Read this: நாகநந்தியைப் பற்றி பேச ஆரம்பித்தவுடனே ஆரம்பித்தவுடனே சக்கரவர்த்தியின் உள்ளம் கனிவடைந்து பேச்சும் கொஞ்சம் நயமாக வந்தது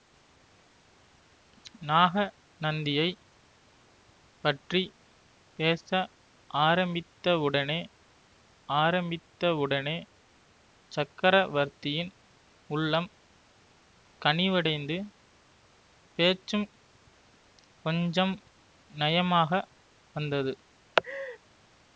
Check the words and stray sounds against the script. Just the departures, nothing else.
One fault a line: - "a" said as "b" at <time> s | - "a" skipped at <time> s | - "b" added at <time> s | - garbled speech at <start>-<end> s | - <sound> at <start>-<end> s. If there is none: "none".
- laugh at 21.0-21.4 s